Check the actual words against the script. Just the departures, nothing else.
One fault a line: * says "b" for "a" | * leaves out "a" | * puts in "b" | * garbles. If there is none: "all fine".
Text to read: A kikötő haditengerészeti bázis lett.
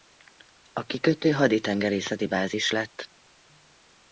all fine